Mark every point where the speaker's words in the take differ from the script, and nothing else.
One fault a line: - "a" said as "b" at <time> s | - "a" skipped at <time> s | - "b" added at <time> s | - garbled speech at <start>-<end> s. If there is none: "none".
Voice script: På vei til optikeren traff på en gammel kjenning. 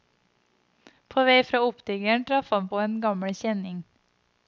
- "til" said as "fra" at 1.4 s
- "han" added at 2.6 s